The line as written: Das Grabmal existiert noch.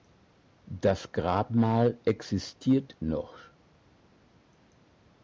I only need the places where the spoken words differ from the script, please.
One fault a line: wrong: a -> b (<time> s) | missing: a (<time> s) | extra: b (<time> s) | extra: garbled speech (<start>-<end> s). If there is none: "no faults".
no faults